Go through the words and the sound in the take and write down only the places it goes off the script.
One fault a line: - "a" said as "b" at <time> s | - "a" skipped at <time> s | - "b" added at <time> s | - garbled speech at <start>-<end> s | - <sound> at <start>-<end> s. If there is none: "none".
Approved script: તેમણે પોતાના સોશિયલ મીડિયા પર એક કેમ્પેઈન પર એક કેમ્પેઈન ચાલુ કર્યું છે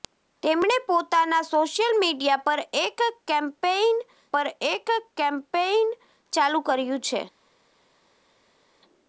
none